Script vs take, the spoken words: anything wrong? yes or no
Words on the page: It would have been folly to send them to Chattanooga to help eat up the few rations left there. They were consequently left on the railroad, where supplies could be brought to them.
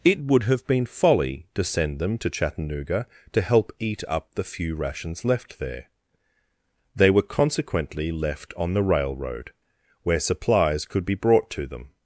no